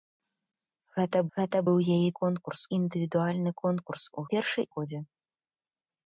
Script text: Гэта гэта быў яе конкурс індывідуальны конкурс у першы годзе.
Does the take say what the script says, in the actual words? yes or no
yes